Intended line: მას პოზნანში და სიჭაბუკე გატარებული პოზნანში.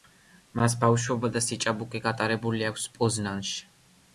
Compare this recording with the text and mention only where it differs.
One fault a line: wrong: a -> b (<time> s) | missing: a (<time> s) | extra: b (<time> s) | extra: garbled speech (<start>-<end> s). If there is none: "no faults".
wrong: პოზნანში -> ბავშვობა (0.8 s)
extra: აქვს (2.7 s)